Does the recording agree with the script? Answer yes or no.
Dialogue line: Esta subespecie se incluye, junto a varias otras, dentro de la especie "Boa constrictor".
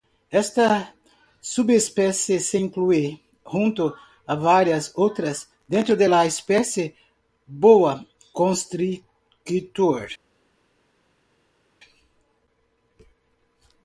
yes